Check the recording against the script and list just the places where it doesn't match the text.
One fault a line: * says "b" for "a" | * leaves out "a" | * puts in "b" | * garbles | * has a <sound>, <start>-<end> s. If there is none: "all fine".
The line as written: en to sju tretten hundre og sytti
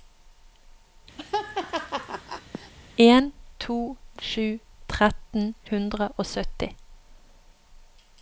* has a laugh, 1.2-2.7 s